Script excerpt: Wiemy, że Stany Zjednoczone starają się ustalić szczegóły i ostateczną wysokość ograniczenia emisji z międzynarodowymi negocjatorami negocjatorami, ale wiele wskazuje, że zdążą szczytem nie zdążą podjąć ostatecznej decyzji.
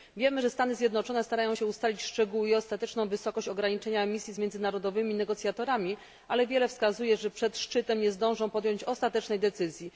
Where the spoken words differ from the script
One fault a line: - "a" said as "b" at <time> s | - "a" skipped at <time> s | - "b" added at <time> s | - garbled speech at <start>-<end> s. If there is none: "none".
- "negocjatorami" skipped at 6.0 s
- "zdążą" said as "przed" at 7.3 s